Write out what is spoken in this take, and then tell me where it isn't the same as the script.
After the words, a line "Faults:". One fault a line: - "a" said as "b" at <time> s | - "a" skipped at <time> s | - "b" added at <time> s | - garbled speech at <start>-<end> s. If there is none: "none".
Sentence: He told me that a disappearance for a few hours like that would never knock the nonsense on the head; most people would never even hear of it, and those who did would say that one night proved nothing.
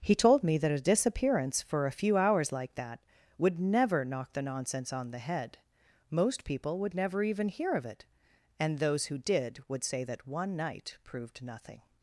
He told me that a disappearance for a few hours like that would never knock the nonsense on the head; most people would never even hear of it, and those who did would say that one night proved nothing.
Faults:
none